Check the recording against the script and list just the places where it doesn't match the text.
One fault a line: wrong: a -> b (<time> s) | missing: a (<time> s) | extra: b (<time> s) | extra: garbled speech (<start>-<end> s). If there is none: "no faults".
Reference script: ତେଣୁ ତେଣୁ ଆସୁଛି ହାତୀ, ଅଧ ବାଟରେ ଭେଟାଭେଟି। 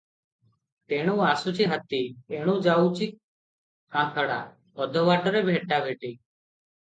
missing: ତେଣୁ (1.1 s)
extra: ଏଣୁ ଯାଉଛି କାନ୍ଥଡ଼ା (2.3 s)